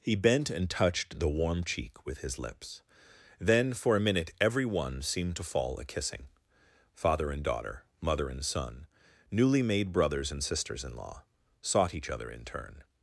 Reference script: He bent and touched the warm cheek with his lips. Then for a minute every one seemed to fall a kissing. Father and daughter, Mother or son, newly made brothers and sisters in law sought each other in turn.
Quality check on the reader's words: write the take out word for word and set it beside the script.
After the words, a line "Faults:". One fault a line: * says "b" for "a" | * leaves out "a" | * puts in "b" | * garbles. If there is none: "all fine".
He bent and touched the warm cheek with his lips. Then for a minute every one seemed to fall a kissing. Father and daughter, Mother and son, newly made brothers and sisters in law sought each other in turn.
Faults:
* says "and" for "or"